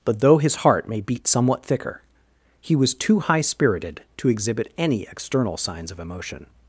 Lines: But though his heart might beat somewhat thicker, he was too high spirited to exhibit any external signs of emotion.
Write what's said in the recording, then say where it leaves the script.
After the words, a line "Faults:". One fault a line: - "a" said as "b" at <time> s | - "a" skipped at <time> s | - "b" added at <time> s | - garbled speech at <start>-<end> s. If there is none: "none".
But though his heart may beat somewhat thicker, he was too high spirited to exhibit any external signs of emotion.
Faults:
- "might" said as "may" at 0.9 s